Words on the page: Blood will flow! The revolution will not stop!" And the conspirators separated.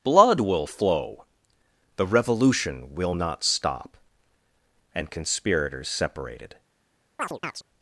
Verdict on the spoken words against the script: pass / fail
fail